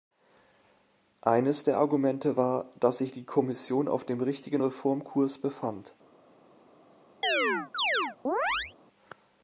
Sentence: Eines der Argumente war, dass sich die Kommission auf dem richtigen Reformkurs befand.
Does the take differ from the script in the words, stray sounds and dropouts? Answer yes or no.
yes